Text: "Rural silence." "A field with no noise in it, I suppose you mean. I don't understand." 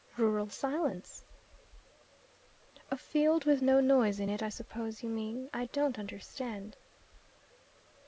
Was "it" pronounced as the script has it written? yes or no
yes